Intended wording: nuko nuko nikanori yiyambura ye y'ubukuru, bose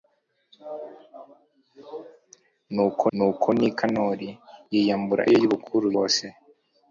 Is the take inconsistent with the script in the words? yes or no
no